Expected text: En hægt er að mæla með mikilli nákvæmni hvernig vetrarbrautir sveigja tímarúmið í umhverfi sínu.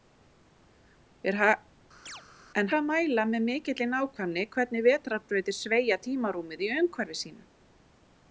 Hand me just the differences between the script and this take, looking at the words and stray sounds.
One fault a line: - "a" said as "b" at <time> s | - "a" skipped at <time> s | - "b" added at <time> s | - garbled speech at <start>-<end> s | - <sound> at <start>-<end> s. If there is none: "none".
- chirp at 2.1-2.2 s
- "hægt" skipped at 2.7 s